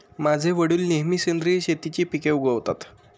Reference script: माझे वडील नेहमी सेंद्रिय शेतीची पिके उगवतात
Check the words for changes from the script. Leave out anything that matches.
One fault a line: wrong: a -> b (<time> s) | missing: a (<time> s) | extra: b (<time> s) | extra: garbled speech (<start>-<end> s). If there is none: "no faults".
no faults